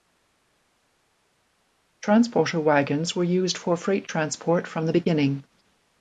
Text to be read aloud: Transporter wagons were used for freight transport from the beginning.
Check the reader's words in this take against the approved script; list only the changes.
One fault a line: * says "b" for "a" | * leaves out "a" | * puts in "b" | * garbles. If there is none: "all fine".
all fine